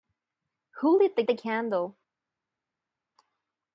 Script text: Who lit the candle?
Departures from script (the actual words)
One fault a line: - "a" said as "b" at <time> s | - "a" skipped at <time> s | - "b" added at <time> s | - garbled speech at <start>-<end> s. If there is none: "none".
- "the" added at 1.3 s